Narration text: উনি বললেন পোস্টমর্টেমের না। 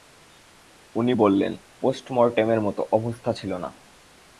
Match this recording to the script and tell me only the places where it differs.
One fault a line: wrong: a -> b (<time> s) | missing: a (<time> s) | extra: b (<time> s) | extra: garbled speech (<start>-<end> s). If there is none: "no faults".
extra: মতো অবস্থা ছিল (2.6 s)